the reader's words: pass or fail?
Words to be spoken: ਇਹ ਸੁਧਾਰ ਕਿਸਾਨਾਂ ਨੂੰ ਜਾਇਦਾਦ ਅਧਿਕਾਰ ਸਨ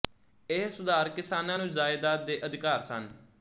fail